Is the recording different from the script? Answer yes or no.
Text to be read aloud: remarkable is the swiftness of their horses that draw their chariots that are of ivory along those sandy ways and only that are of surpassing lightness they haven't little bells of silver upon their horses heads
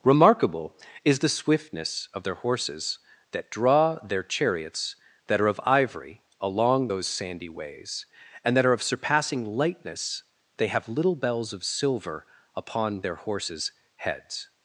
yes